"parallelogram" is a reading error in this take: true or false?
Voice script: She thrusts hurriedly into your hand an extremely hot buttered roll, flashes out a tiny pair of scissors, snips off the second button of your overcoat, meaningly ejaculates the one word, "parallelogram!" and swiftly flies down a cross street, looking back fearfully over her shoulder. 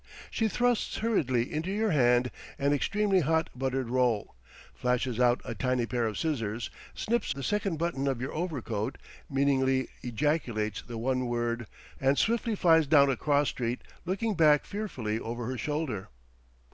true